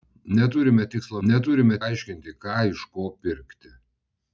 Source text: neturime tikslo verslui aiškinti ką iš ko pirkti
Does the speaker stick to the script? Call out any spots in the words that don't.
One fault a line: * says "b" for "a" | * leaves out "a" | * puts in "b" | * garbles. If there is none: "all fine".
* says "neturime" for "verslui"